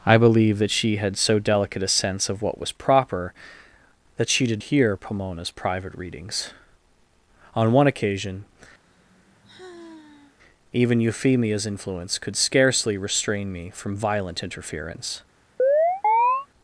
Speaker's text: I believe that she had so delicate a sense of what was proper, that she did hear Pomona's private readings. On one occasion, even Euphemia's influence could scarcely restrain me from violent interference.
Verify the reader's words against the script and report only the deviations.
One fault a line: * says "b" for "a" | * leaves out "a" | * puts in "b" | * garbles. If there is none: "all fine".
all fine